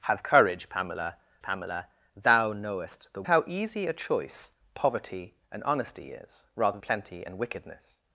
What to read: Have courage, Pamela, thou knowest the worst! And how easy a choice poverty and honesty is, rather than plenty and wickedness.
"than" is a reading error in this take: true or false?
true